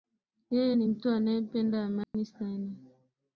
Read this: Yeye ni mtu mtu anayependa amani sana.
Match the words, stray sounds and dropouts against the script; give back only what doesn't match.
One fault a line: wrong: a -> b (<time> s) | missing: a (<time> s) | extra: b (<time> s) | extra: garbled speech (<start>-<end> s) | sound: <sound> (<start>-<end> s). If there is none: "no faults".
missing: mtu (1.1 s)
sound: dropout (2.0-2.1 s)